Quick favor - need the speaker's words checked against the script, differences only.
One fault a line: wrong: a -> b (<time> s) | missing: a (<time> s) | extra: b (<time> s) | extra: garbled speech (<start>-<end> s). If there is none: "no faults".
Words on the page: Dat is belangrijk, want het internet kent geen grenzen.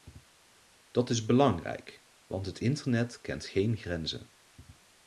no faults